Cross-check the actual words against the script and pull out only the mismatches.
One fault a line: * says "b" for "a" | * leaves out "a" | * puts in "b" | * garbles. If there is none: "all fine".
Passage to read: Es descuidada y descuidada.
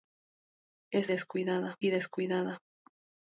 all fine